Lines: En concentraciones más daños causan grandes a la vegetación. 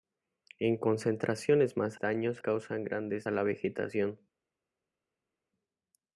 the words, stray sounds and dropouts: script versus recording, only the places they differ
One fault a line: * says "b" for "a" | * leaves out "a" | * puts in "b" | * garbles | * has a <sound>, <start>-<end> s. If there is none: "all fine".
all fine